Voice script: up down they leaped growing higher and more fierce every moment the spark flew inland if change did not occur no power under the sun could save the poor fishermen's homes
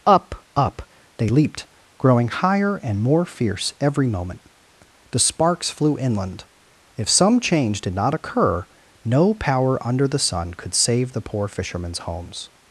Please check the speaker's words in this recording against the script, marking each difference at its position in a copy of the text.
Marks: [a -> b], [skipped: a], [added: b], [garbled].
up [down -> up] they leaped growing higher and more fierce every moment the [spark -> sparks] flew inland if [added: some] change did not occur no power under the sun could save the poor fishermen's homes